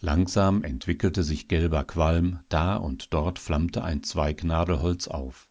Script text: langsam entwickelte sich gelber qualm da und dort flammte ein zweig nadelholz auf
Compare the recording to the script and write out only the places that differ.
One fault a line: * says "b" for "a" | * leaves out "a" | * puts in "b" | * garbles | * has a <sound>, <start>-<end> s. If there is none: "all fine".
all fine